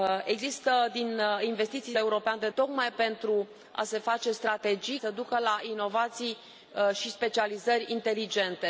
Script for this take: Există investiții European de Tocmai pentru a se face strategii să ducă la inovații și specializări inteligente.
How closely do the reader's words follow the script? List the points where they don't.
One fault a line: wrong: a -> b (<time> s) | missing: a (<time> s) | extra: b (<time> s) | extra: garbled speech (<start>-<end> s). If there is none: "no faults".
no faults